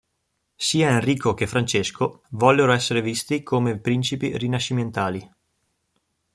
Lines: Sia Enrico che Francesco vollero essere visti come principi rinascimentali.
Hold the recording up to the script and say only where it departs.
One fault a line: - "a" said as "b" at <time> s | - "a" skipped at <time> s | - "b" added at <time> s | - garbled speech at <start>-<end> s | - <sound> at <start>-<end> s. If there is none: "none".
none